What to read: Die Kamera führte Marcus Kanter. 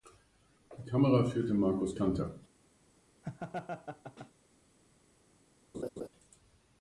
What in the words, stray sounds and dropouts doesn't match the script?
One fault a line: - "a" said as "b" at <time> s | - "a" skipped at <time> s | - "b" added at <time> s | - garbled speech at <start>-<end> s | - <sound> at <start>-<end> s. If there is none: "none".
- laugh at 3.2-4.3 s
- laugh at 5.7-6.1 s